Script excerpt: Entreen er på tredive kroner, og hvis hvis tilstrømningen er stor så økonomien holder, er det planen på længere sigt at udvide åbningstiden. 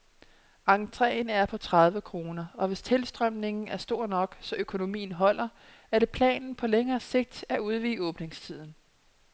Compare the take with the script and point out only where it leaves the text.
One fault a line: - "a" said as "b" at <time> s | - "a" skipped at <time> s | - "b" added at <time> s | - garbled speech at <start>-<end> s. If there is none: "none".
- "hvis" skipped at 2.8 s
- "nok" added at 4.1 s